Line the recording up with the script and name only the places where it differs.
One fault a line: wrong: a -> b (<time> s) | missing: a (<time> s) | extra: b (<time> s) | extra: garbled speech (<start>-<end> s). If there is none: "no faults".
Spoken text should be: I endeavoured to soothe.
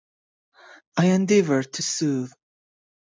no faults